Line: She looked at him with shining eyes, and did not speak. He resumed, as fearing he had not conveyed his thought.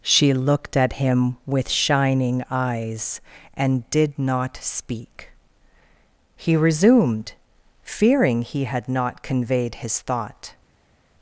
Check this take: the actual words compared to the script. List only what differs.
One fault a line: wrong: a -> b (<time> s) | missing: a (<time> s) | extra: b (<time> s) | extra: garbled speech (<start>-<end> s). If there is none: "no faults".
missing: as (7.3 s)